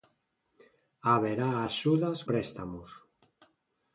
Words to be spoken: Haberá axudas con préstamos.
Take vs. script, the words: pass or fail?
fail